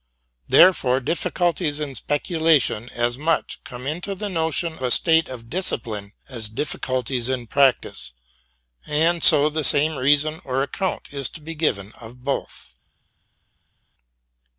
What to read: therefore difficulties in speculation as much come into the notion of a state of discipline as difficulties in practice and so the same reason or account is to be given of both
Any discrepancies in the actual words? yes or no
yes